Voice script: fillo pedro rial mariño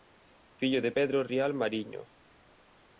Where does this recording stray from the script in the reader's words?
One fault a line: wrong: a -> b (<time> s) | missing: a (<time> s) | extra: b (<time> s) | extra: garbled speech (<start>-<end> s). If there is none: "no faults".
extra: de (0.8 s)